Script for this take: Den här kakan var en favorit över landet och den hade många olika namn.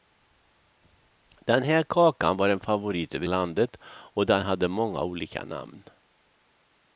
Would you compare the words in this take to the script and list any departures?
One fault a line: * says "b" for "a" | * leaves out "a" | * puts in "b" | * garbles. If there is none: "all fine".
all fine